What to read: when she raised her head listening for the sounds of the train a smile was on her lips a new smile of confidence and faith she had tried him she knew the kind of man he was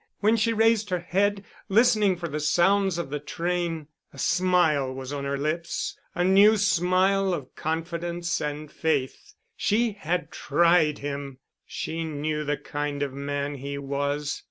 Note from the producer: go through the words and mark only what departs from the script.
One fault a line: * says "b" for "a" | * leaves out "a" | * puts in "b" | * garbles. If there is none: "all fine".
all fine